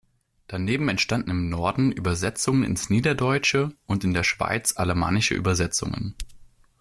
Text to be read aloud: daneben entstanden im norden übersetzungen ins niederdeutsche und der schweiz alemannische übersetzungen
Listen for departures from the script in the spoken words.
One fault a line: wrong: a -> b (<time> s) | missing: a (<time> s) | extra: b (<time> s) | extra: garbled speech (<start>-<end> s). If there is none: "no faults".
extra: in (4.0 s)